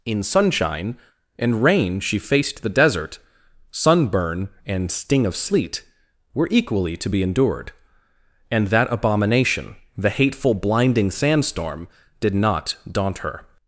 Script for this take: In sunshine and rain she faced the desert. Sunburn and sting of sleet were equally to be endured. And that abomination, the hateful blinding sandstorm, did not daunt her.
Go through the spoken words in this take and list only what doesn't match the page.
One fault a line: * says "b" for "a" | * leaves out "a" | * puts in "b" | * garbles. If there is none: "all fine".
all fine